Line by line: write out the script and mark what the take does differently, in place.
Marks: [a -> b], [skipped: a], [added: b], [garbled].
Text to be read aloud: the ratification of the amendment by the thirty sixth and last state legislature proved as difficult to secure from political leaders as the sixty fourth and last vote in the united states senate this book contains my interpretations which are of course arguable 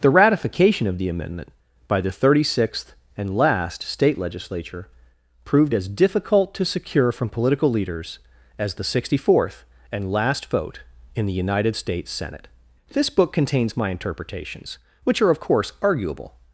the ratification of the amendment by the thirty sixth and last state legislature proved as difficult to secure from political leaders as the sixty fourth and last vote in the united states senate this book contains my interpretations which are of course arguable